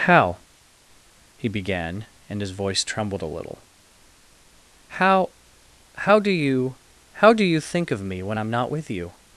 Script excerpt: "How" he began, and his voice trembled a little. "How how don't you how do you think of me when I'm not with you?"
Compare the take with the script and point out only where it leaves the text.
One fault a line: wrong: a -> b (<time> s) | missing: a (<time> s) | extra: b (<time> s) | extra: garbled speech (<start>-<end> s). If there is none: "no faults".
wrong: don't -> do (6.2 s)